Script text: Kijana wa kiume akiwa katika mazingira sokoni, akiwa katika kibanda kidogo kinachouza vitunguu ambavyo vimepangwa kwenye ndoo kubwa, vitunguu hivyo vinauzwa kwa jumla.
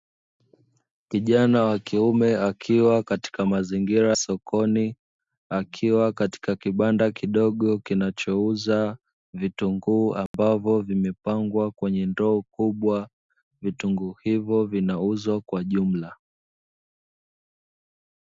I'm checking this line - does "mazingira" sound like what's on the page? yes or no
yes